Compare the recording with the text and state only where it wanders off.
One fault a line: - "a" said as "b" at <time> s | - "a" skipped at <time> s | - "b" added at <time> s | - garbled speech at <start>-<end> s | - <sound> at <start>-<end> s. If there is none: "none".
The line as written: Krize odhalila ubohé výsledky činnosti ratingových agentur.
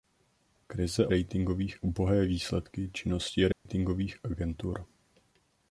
- "odhalila" said as "ratingových" at 1.1 s
- dropout at 3.5-3.7 s